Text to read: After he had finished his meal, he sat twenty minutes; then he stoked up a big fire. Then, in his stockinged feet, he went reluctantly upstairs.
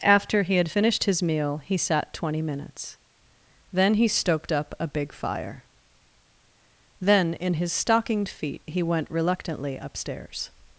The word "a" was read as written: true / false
true